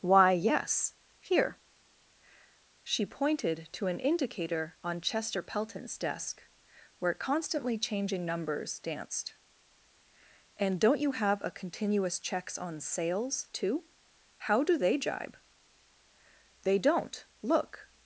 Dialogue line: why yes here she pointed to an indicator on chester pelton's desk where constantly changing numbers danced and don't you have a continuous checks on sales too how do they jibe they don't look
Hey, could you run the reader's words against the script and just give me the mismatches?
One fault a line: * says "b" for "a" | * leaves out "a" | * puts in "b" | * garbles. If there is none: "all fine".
all fine